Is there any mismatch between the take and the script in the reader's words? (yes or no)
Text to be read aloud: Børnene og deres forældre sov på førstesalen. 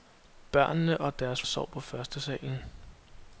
yes